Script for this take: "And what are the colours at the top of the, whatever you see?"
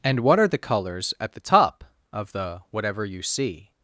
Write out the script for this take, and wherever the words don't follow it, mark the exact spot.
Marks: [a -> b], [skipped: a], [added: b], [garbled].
"And what are the colours at the top of the, whatever you see?"